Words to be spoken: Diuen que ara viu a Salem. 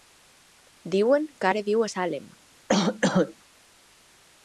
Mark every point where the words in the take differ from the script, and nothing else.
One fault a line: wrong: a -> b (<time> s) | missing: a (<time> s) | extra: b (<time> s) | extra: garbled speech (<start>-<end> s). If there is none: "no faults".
no faults